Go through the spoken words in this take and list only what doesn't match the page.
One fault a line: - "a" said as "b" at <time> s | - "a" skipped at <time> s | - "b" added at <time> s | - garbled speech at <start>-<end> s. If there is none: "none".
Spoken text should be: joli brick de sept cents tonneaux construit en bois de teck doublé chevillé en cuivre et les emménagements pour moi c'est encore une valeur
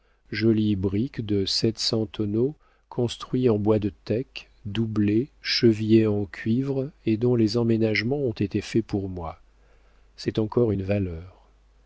- "dont" added at 7.2 s
- "ont été faits" added at 8.2 s